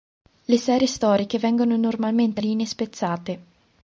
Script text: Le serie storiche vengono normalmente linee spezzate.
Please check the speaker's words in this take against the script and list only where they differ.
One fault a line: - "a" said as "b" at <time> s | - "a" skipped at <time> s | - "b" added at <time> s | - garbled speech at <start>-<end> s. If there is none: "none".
none